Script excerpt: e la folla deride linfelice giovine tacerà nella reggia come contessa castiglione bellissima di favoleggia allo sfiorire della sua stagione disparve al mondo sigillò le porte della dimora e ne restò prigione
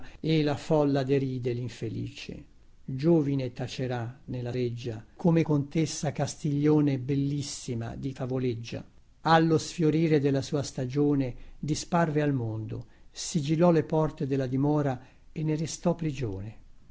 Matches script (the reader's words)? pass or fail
pass